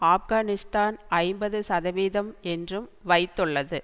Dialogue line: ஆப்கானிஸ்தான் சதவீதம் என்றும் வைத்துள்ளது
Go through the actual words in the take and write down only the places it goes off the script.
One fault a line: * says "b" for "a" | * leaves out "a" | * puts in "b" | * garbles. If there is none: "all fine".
* puts in "ஐம்பது"